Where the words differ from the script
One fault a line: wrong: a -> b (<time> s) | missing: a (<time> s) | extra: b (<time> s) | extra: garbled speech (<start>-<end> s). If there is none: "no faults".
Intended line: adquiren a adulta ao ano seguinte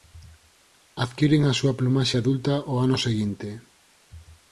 extra: súa plumaxe (1.6 s)